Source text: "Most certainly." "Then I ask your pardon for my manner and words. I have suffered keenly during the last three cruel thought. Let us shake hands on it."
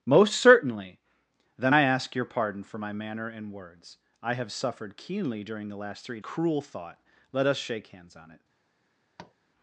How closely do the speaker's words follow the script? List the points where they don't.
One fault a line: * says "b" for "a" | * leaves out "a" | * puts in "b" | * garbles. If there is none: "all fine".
all fine